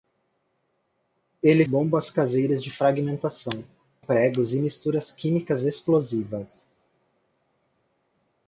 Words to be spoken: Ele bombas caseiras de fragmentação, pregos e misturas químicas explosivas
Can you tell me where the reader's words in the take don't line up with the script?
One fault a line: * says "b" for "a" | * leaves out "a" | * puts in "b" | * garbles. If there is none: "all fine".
all fine